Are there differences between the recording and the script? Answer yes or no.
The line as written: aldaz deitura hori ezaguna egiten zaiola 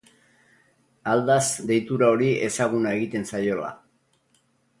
no